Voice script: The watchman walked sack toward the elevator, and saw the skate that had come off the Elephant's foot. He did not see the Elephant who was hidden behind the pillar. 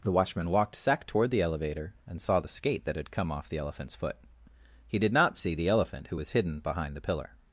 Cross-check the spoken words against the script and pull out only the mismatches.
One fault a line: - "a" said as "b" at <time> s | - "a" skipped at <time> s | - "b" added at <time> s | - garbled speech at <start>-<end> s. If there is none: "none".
none